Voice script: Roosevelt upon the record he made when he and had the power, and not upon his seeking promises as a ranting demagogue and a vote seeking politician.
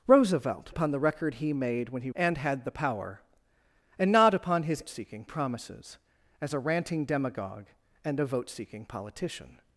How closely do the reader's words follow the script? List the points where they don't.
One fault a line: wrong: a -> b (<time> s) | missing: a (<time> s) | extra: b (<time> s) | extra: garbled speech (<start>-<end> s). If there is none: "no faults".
no faults